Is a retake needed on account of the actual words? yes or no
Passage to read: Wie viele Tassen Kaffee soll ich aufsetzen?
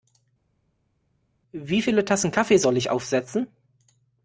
no